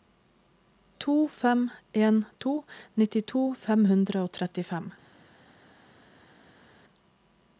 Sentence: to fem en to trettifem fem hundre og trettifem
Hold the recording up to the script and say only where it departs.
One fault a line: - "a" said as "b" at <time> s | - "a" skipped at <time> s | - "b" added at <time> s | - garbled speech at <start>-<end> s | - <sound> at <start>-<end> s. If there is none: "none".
- "trettifem" said as "nittito" at 3.0 s